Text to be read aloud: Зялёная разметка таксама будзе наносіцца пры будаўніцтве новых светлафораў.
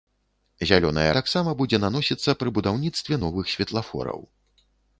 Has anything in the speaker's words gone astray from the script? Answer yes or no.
yes